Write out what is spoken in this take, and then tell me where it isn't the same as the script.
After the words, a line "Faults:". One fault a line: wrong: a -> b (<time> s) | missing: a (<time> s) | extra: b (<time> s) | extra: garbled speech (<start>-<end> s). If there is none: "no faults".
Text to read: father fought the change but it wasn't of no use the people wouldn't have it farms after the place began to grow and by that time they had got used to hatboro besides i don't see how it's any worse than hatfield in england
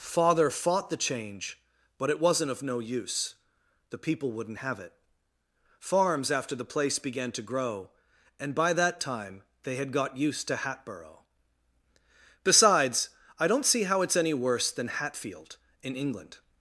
father fought the change but it wasn't of no use the people wouldn't have it farms after the place began to grow and by that time they had got used to hatboro besides i don't see how it's any worse than hatfield in england
Faults:
no faults